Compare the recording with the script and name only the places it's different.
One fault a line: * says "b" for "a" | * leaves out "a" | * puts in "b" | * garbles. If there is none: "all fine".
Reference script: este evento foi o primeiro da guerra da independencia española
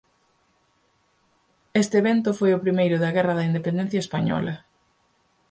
all fine